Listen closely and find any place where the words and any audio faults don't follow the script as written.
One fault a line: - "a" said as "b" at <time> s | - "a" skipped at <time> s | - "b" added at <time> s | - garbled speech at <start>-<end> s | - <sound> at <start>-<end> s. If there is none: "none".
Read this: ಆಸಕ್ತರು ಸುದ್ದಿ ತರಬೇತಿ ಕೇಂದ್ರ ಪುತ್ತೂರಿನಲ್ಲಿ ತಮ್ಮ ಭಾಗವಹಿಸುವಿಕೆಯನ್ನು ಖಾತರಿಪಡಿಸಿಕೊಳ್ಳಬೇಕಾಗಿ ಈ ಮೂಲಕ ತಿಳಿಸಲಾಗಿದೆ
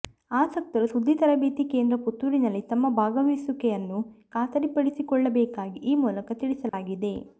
- dropout at 6.7-6.7 s